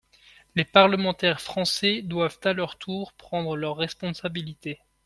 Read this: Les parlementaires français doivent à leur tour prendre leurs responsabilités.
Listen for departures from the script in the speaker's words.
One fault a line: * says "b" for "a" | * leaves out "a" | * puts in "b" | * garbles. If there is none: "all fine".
all fine